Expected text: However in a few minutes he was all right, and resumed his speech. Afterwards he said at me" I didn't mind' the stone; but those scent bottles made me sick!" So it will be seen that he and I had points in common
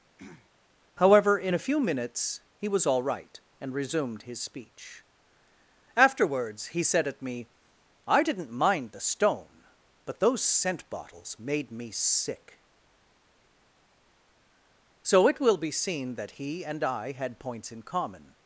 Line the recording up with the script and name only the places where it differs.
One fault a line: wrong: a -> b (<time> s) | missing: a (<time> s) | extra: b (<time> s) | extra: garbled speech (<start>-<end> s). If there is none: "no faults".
no faults